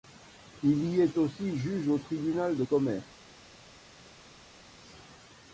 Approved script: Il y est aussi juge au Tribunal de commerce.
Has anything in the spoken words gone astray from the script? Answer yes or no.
no